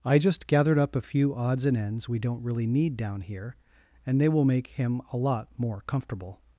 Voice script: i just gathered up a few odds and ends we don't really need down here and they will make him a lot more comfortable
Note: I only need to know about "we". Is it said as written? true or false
true